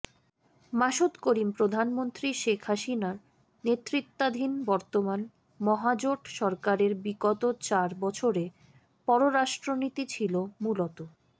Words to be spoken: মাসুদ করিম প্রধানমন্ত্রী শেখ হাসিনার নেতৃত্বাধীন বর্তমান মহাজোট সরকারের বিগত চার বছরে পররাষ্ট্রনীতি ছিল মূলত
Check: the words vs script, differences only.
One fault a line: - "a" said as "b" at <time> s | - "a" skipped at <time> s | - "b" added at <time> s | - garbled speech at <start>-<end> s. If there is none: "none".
none